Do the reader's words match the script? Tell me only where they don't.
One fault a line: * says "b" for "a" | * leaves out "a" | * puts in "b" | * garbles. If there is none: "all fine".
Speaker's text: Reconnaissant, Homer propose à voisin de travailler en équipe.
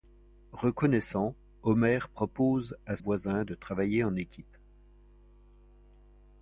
all fine